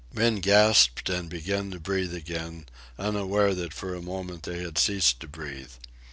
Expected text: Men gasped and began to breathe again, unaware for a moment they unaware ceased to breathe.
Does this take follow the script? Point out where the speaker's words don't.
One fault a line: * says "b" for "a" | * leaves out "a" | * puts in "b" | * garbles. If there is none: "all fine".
* puts in "that"
* says "had" for "unaware"